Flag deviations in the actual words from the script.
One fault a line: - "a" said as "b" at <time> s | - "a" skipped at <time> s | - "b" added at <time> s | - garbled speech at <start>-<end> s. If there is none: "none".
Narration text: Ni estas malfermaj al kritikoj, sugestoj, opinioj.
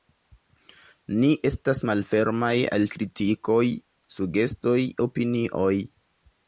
none